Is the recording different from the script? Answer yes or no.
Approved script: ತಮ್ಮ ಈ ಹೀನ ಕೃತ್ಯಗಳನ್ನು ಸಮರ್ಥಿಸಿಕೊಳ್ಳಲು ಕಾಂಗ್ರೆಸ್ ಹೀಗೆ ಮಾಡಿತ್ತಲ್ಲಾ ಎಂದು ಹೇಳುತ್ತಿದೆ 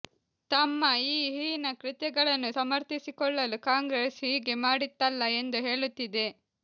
no